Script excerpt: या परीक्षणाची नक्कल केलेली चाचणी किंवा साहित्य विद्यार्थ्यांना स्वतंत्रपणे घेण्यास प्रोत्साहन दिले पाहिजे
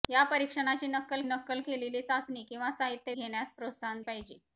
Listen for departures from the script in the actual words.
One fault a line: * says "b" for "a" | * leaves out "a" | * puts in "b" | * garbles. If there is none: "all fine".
* puts in "नक्कल"
* leaves out "विद्यार्थ्यांना स्वतंत्रपणे"
* leaves out "दिले"